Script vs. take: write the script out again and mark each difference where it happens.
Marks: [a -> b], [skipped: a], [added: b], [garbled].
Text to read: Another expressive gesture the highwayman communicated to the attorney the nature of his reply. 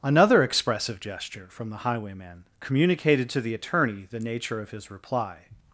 Another expressive gesture [added: from] the highwayman communicated to the attorney the nature of his reply.